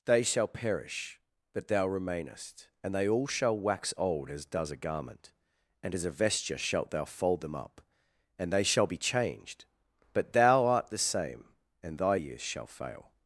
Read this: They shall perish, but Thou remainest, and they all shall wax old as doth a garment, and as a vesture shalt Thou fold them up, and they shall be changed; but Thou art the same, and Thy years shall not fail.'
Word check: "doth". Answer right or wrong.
wrong